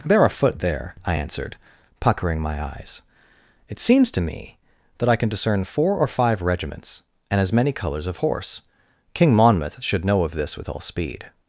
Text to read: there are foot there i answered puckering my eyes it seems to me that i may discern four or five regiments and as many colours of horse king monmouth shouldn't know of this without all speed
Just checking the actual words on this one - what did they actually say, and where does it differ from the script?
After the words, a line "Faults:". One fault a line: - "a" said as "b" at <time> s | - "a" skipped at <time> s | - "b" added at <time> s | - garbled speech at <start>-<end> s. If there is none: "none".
there are foot there i answered puckering my eyes it seems to me that i can discern four or five regiments and as many colours of horse king monmouth should know of this with all speed
Faults:
- "may" said as "can" at 5.2 s
- "shouldn't" said as "should" at 9.8 s
- "without" said as "with" at 10.6 s